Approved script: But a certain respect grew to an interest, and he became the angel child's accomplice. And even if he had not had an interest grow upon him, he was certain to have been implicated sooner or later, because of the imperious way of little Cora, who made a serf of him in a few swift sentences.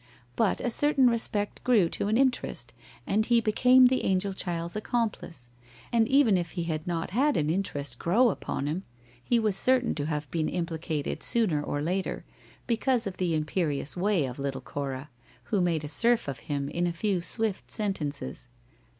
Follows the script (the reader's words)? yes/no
yes